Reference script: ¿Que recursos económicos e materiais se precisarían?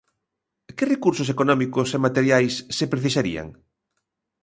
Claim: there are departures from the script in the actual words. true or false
false